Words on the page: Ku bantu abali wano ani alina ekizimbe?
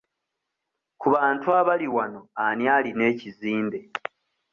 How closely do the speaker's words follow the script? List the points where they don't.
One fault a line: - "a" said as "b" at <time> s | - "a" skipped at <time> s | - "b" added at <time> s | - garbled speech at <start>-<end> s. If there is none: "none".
none